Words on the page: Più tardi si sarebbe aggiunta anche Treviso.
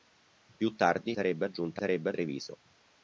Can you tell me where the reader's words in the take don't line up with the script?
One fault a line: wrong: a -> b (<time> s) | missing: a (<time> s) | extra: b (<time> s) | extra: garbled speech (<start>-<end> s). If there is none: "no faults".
missing: si (1.1 s)
wrong: anche -> sarebbe (1.8 s)